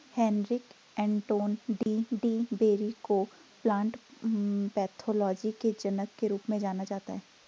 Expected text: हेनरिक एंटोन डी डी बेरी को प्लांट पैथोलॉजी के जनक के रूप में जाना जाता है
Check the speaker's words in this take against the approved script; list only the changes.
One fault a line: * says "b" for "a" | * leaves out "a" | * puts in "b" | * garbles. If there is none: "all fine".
all fine